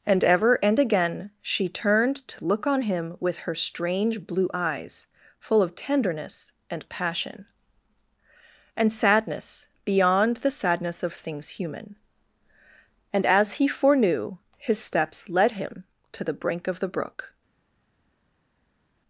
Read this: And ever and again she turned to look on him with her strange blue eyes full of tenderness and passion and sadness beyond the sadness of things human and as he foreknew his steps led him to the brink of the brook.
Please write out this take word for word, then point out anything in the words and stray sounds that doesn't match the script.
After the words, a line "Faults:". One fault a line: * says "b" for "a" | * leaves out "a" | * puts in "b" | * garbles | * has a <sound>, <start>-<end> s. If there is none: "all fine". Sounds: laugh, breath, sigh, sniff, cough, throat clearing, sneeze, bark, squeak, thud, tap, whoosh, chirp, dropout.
And ever and again she turned to look on him with her strange blue eyes full of tenderness and passion and sadness beyond the sadness of things human and as he foreknew his steps led him to the brink of the brook.
Faults:
all fine